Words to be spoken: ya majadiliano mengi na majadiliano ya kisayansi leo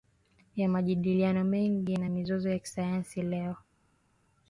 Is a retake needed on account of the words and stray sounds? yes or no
yes